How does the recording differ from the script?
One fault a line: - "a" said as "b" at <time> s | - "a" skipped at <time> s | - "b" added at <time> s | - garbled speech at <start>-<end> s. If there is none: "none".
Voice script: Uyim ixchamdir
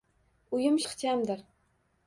none